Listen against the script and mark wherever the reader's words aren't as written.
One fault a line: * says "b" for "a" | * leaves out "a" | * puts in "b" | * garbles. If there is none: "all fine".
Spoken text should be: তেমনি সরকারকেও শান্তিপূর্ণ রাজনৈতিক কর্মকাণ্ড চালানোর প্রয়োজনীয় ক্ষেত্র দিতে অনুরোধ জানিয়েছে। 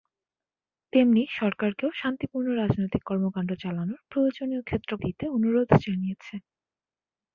all fine